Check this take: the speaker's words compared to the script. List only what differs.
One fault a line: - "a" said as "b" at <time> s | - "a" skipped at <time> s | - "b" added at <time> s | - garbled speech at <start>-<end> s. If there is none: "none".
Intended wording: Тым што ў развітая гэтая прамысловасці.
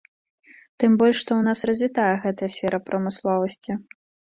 - "больш" added at 1.0 s
- "нас" added at 1.5 s
- "сфера" added at 2.6 s